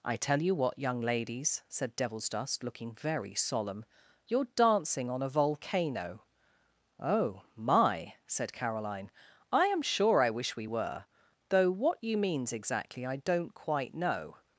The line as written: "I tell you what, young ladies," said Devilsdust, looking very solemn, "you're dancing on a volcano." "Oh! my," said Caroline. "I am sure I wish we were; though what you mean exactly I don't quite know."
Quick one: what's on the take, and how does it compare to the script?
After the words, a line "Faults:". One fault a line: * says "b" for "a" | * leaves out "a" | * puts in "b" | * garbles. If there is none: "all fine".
"I tell you what, young ladies," said Devilsdust, looking very solemn, "you're dancing on a volcano." "Oh! my," said Caroline. "I am sure I wish we were; though what you means exactly I don't quite know."
Faults:
* says "means" for "mean"